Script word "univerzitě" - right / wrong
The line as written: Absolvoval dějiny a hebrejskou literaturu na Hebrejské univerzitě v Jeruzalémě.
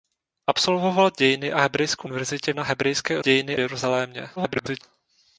wrong